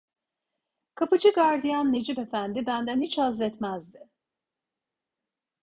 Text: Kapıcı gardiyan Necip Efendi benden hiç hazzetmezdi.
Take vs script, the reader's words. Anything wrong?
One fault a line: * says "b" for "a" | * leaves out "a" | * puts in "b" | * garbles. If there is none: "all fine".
all fine